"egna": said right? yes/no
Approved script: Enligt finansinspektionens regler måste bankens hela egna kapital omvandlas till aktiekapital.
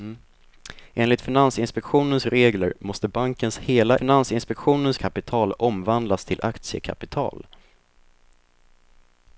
no